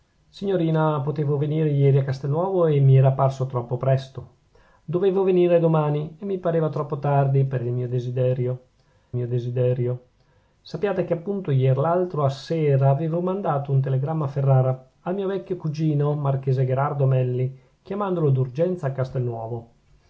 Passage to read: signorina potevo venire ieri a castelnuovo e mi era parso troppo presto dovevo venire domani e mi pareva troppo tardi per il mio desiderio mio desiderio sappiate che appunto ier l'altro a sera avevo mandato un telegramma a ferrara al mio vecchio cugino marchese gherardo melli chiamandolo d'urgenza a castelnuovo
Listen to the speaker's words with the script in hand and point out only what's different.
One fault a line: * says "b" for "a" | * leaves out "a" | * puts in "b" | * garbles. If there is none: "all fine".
all fine